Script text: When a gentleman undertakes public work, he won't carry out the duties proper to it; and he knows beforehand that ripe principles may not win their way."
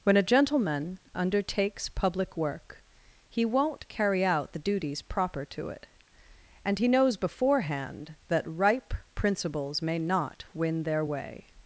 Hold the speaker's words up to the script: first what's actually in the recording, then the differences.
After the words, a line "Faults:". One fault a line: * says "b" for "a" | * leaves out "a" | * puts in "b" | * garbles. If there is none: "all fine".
When a gentleman undertakes public work, he won't carry out the duties proper to it; and he knows beforehand that ripe principles may not win their way."
Faults:
all fine